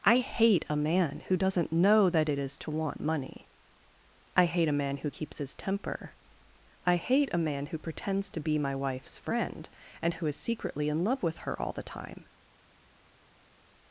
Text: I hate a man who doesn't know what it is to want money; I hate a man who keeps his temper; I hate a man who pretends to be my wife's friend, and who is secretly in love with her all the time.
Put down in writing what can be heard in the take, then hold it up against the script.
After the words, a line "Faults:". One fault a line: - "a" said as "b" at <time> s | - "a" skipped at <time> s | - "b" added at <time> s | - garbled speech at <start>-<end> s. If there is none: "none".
I hate a man who doesn't know that it is to want money; I hate a man who keeps his temper; I hate a man who pretends to be my wife's friend, and who is secretly in love with her all the time.
Faults:
- "what" said as "that" at 2.1 s